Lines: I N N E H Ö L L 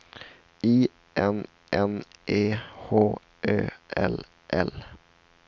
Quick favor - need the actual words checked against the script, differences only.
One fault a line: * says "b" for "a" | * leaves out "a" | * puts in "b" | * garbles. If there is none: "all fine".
all fine